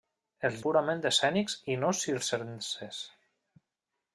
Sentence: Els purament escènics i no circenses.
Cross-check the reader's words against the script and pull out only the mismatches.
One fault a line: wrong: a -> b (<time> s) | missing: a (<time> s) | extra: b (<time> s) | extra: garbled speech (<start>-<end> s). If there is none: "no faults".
no faults